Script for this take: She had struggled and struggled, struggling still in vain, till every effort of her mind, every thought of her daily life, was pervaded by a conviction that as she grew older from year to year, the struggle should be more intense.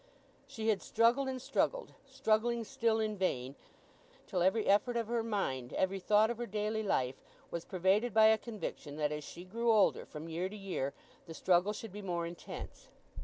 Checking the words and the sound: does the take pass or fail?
pass